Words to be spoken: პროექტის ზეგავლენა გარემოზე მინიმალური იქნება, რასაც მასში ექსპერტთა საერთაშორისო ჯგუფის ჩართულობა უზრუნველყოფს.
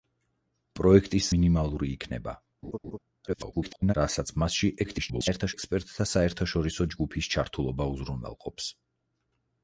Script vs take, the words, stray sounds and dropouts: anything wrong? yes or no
yes